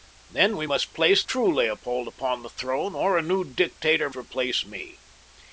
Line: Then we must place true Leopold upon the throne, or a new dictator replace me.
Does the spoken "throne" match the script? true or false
true